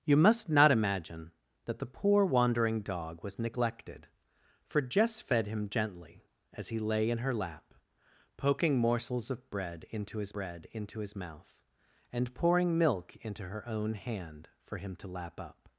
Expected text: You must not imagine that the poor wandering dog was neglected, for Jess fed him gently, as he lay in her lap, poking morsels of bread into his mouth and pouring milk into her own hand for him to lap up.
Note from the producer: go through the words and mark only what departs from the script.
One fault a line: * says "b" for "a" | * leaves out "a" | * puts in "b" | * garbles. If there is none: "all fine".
* puts in "bread into his"